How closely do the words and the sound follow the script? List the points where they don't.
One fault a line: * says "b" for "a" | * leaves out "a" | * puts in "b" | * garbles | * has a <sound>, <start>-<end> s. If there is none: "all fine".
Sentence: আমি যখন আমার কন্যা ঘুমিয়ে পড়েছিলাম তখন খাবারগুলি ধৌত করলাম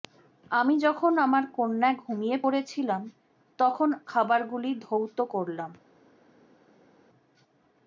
all fine